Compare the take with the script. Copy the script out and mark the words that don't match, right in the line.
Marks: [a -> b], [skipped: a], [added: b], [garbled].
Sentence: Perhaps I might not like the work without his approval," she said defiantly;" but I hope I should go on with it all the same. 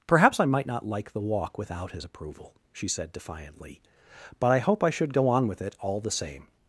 Perhaps I might not like the [work -> walk] without his approval," she said defiantly;" but I hope I should go on with it all the same.